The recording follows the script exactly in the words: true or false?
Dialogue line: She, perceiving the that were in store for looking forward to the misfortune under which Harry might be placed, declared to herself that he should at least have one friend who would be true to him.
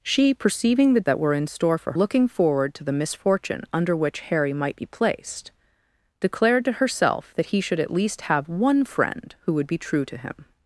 true